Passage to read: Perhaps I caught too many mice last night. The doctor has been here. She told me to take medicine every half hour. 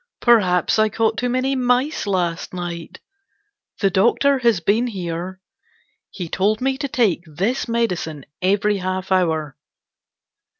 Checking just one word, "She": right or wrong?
wrong